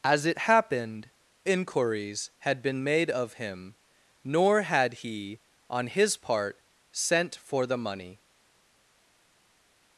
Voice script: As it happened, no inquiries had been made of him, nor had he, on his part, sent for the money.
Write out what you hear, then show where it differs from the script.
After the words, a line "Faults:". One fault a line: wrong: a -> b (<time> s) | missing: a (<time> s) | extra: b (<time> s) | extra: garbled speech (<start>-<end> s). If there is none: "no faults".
As it happened, inquiries had been made of him, nor had he, on his part, sent for the money.
Faults:
missing: no (1.1 s)